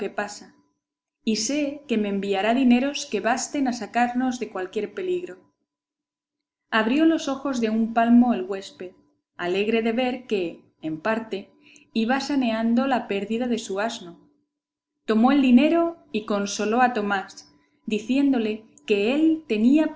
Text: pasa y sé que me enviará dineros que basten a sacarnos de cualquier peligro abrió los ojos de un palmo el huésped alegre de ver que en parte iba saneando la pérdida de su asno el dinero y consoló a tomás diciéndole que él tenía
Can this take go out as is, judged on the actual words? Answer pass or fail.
fail